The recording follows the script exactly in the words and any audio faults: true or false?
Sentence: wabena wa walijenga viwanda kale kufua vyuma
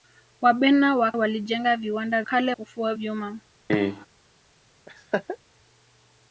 false